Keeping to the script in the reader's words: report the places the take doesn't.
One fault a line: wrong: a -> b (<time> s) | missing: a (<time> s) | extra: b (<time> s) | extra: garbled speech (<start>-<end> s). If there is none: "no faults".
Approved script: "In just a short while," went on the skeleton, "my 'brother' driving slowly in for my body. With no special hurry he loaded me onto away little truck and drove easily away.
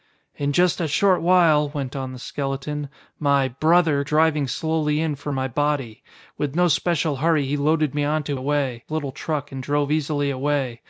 no faults